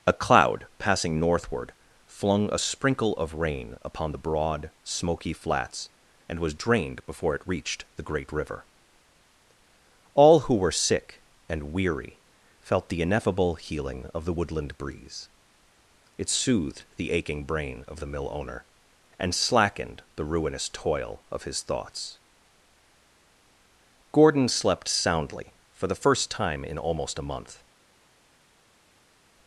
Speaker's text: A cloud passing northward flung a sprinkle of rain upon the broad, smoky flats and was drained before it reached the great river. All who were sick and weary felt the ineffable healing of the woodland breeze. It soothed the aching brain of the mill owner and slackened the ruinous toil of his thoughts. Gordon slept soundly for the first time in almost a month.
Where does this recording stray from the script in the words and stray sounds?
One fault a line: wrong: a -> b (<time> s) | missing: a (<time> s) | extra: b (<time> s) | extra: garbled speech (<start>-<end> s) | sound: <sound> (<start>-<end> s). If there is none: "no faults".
no faults